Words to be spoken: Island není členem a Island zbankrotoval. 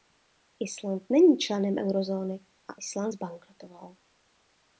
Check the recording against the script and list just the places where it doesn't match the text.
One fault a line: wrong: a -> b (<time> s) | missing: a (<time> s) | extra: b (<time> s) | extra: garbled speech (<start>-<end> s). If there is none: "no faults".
extra: eurozóny (1.8 s)